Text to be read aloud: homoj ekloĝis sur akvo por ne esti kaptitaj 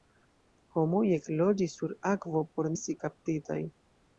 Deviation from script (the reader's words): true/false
true